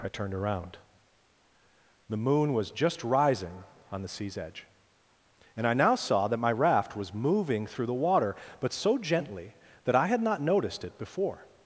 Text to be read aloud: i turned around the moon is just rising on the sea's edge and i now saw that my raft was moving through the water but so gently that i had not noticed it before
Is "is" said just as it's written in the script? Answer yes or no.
no